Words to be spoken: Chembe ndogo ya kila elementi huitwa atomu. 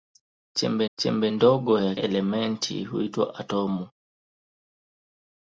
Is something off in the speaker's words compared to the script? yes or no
yes